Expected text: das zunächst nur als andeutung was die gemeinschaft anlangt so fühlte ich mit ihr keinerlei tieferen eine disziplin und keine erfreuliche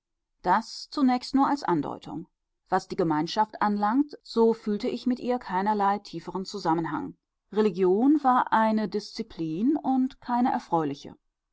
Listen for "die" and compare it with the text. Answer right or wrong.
right